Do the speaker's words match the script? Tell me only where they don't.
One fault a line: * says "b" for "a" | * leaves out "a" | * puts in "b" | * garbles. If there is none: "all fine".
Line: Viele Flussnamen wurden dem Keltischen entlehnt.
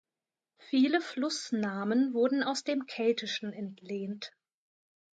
* puts in "aus"